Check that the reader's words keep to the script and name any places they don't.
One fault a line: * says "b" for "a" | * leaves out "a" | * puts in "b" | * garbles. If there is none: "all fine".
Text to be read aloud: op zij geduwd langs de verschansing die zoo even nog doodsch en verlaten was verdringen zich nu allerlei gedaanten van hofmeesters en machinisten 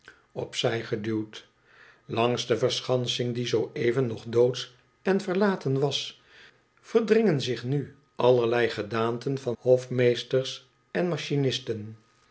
all fine